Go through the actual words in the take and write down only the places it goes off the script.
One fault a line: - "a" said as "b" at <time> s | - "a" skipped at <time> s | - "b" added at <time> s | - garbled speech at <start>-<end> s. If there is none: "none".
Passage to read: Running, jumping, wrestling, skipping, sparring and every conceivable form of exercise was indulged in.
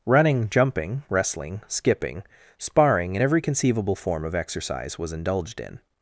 none